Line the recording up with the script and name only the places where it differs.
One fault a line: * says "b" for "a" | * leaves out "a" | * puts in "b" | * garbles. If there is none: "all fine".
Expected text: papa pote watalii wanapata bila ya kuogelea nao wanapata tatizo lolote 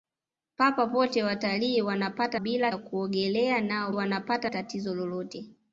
all fine